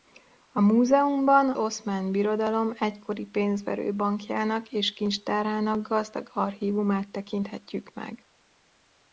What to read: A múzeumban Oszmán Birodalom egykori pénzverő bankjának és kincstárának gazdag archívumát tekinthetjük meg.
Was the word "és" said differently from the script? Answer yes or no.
no